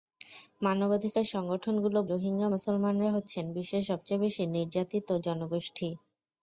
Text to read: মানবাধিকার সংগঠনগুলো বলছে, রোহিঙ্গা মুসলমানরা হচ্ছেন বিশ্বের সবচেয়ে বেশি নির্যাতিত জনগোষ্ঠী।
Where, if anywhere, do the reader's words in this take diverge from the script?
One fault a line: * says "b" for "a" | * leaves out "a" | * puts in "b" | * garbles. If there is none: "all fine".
* leaves out "বলছে"